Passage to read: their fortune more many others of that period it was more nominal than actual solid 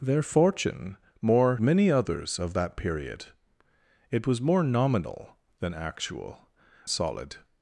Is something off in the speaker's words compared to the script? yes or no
no